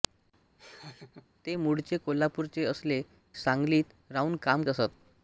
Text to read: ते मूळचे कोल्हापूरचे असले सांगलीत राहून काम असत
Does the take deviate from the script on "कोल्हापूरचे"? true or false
false